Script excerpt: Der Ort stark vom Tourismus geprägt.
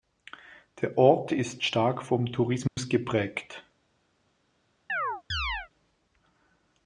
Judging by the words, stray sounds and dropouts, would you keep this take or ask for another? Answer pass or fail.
fail